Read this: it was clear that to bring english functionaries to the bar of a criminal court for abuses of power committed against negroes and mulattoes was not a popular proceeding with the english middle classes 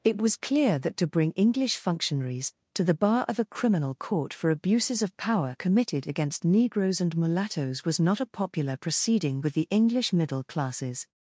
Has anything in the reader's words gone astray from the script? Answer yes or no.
no